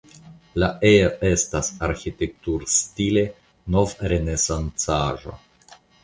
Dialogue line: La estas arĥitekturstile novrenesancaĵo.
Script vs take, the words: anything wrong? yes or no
yes